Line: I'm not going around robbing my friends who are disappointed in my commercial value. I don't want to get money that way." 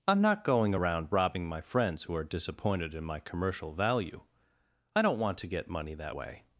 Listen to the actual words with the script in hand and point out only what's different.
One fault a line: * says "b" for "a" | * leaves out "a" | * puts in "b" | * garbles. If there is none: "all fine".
all fine